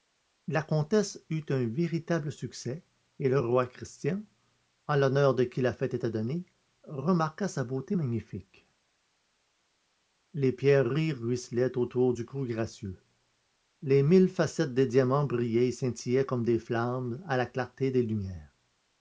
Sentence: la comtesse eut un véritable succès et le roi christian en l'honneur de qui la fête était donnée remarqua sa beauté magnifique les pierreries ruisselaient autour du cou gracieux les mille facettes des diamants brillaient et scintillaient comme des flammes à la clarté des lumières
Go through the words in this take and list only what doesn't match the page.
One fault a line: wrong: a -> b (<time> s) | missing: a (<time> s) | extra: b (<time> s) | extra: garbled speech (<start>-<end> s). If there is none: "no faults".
no faults